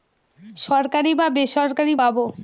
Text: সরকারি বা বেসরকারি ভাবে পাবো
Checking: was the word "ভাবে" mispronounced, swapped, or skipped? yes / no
yes